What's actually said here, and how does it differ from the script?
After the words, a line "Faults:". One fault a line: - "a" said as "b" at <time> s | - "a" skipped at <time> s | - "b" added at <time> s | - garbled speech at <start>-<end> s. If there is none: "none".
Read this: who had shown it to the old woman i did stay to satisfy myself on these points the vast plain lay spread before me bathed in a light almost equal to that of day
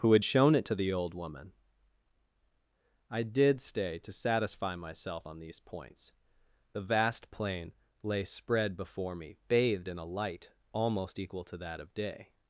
who had shown it to the old woman i did stay to satisfy myself on these points the vast plain lay spread before me bathed in a light almost equal to that of day
Faults:
none